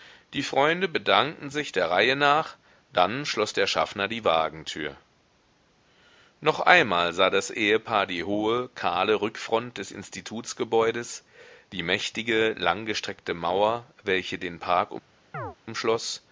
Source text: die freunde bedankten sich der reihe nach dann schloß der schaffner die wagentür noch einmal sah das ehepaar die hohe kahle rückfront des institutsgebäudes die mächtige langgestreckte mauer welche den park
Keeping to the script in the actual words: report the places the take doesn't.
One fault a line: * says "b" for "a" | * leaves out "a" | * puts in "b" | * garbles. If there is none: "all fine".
all fine